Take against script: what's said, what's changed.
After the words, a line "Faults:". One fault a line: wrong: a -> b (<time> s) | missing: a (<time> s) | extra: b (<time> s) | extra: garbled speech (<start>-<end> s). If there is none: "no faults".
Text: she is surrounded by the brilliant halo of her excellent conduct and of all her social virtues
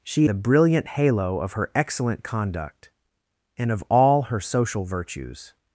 she the brilliant halo of her excellent conduct and of all her social virtues
Faults:
missing: is surrounded by (0.3 s)